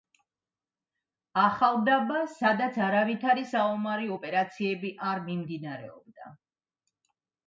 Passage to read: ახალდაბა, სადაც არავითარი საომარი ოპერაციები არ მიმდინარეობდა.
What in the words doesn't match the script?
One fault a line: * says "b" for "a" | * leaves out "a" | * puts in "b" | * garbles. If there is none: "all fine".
all fine